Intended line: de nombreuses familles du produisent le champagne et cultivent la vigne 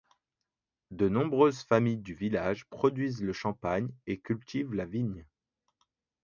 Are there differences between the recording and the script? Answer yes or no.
yes